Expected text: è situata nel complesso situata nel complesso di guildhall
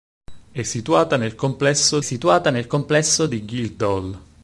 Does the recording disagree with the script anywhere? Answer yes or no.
no